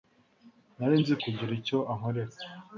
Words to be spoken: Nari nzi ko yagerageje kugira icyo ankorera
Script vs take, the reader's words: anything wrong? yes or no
yes